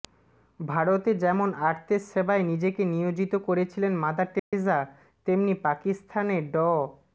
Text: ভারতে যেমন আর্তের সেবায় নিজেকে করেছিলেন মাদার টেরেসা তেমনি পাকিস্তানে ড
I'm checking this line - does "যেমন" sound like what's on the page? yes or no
yes